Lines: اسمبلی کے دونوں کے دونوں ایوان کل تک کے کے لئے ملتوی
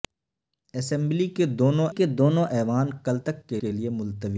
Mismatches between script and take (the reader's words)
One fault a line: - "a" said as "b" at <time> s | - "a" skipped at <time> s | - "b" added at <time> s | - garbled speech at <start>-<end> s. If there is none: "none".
none